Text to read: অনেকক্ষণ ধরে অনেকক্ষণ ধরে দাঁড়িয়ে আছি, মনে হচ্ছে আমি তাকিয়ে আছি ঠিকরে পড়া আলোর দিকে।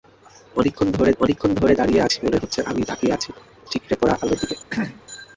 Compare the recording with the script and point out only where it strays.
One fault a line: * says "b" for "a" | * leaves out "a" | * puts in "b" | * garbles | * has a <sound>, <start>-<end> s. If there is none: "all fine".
* has a throat clearing, 4.7-5.0 s